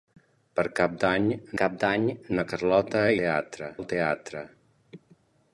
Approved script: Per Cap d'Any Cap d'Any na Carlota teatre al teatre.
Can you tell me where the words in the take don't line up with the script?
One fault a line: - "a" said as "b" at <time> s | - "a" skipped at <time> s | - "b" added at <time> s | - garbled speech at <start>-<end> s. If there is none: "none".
none